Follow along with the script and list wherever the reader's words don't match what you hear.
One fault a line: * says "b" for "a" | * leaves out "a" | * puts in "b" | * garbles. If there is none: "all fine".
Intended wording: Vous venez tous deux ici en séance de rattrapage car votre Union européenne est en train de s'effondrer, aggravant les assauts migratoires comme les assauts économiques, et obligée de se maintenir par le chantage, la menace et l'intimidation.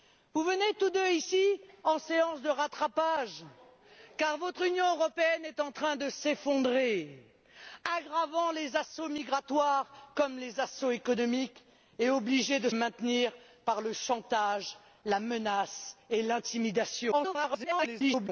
* leaves out "se"
* garbles